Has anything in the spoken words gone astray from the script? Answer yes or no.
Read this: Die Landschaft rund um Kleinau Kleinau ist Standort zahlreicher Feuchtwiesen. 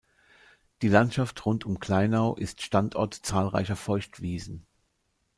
yes